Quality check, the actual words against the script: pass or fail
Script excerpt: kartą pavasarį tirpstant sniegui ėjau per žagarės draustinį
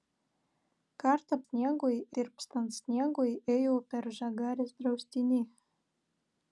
fail